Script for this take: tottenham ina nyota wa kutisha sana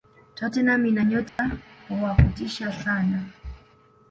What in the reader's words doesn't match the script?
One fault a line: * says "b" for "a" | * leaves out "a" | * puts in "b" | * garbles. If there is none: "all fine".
all fine